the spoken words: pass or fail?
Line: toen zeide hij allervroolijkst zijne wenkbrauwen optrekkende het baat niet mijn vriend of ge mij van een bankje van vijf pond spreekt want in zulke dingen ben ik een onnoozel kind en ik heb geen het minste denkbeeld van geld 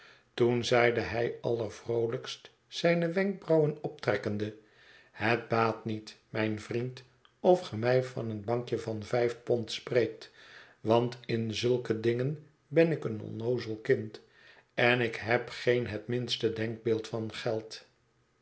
pass